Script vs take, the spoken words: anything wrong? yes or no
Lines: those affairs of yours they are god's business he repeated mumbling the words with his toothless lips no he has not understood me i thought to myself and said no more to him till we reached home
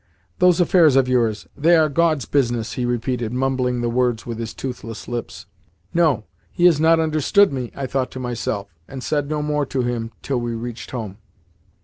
no